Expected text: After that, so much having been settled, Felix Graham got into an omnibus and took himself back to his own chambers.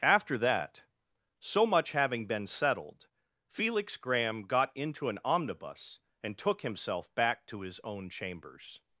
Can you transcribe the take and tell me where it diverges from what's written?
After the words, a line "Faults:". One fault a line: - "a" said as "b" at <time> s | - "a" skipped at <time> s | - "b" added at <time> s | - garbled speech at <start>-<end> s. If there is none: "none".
After that, so much having been settled, Felix Graham got into an omnibus and took himself back to his own chambers.
Faults:
none